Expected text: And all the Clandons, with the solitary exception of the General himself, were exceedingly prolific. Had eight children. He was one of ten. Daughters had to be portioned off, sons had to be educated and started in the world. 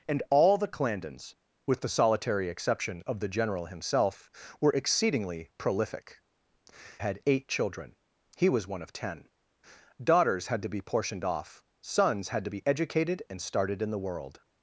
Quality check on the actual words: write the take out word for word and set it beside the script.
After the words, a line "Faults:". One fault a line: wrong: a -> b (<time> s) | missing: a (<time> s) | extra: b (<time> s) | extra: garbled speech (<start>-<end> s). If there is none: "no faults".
And all the Clandons, with the solitary exception of the General himself, were exceedingly prolific. Had eight children. He was one of ten. Daughters had to be portioned off, sons had to be educated and started in the world.
Faults:
no faults